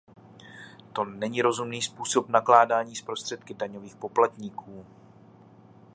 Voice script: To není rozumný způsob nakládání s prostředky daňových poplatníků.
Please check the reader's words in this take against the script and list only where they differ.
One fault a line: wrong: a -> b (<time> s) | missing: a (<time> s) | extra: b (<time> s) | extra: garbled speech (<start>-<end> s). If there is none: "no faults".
no faults